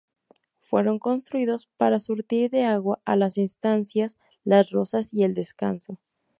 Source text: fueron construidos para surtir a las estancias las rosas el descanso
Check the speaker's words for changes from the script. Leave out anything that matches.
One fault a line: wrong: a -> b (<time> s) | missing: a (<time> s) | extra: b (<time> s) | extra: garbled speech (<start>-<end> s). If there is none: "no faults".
extra: de agua (2.5 s)
extra: y (5.1 s)